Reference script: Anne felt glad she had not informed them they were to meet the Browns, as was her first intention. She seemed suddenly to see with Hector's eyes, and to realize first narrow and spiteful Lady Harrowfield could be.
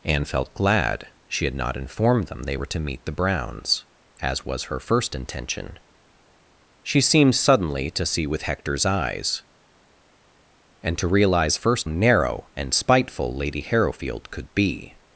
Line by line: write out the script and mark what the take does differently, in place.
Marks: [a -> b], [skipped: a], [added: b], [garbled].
Anne felt glad she had not informed them they were to meet the Browns, as was her first intention. She seemed suddenly to see with Hector's eyes, and to realize first narrow and spiteful Lady Harrowfield could be.